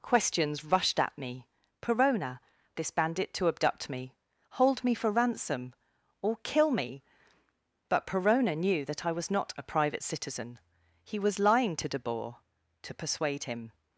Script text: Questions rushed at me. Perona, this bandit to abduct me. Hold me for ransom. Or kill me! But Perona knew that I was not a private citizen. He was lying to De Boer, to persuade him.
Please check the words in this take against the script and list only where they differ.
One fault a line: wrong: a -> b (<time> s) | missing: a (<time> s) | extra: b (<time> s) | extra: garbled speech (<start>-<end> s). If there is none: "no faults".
no faults